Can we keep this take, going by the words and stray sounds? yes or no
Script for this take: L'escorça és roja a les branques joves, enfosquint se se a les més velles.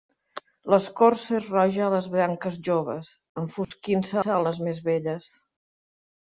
no